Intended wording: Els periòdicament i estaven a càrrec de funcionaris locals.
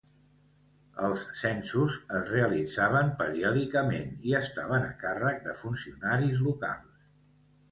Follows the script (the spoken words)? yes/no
no